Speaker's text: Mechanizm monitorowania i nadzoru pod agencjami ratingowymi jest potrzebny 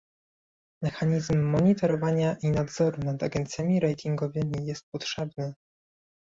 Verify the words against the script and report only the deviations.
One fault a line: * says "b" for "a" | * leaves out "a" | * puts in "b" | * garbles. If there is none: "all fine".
* says "nad" for "pod"